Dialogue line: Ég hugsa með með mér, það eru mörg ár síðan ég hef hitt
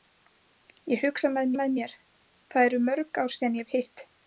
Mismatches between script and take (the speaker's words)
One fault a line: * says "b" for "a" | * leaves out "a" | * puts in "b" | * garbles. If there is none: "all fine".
all fine